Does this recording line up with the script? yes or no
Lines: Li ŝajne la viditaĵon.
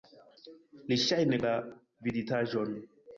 yes